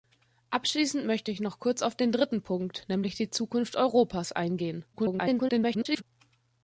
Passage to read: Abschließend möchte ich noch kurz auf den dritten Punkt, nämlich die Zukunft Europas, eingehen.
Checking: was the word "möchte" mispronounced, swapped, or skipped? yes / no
no